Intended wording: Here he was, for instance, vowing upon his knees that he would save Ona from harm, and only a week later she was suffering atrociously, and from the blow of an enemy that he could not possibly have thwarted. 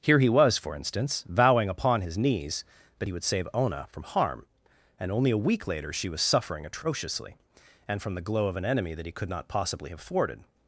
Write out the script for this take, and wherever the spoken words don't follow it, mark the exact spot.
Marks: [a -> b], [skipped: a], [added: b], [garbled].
Here he was, for instance, vowing upon his knees that he would save Ona from harm, and only a week later she was suffering atrociously, and from the [blow -> glow] of an enemy that he could not possibly have thwarted.